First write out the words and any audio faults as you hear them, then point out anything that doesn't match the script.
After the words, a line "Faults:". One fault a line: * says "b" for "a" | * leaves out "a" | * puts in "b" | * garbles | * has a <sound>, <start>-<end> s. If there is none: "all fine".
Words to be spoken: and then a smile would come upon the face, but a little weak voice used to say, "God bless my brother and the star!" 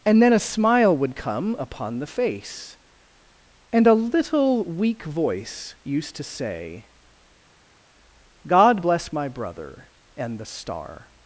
and then a smile would come upon the face, and a little weak voice used to say, "God bless my brother and the star!"
Faults:
* says "and" for "but"